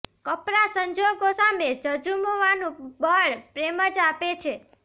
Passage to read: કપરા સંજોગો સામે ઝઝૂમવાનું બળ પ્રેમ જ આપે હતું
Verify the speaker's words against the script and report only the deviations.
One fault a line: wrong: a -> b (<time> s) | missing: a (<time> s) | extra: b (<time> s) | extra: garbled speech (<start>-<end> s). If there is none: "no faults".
wrong: હતું -> છે (4.4 s)